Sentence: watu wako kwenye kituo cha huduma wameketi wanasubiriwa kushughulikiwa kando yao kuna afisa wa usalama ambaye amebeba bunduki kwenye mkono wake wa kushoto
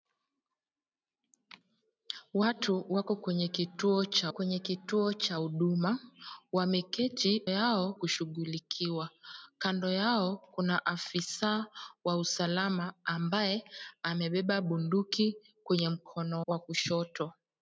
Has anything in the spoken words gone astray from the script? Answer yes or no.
yes